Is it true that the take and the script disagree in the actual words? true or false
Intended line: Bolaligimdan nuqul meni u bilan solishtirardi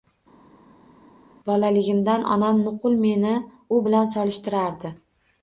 true